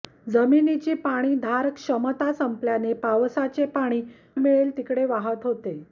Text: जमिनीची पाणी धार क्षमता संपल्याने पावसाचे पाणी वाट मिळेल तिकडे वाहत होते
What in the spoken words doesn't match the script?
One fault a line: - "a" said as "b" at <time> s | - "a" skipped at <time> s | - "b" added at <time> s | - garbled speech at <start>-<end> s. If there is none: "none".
- "वाट" skipped at 4.0 s